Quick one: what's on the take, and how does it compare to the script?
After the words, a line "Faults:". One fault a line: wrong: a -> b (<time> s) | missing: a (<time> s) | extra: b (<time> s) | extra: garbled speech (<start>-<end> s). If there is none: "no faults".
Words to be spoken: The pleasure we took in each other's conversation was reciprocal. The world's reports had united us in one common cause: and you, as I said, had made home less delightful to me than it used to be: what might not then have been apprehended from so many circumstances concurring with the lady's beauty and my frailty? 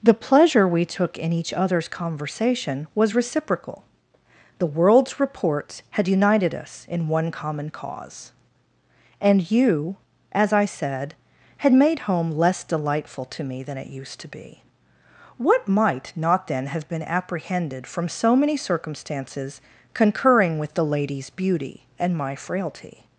The pleasure we took in each other's conversation was reciprocal. The world's reports had united us in one common cause: and you, as I said, had made home less delightful to me than it used to be: what might not then have been apprehended from so many circumstances concurring with the lady's beauty and my frailty?
Faults:
no faults